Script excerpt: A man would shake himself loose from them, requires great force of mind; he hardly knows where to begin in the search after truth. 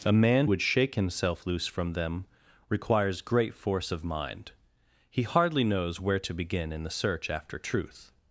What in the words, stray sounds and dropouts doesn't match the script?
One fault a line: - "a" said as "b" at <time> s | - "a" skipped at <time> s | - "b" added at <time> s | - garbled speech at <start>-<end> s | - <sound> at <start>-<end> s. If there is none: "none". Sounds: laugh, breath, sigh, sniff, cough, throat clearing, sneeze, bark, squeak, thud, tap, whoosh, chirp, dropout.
none